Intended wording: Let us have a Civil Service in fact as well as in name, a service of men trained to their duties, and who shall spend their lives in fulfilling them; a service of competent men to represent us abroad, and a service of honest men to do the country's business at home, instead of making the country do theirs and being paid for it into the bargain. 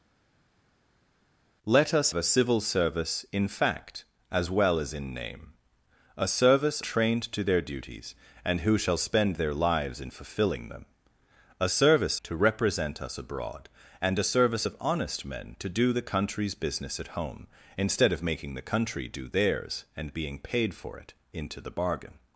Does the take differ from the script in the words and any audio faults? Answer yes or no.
yes